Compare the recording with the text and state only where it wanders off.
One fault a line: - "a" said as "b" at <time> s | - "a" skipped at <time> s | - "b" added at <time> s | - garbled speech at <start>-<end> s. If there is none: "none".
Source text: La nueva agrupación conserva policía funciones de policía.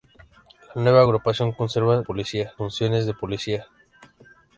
none